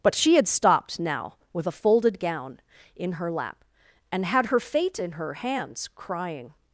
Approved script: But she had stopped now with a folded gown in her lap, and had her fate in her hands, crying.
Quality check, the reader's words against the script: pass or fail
pass